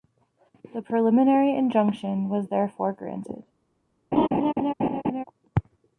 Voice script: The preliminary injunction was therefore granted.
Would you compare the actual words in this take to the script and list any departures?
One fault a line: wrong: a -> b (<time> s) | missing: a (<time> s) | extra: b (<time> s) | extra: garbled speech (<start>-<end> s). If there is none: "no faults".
no faults